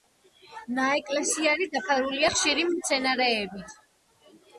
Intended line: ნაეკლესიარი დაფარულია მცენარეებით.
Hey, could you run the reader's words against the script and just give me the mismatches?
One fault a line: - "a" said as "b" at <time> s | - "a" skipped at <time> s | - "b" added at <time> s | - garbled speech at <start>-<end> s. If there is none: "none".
- "ხშირი" added at 2.4 s